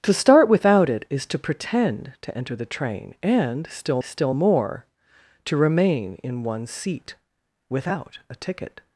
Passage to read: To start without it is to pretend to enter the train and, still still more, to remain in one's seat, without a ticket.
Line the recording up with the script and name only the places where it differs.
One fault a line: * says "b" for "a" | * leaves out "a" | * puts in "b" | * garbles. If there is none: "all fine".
all fine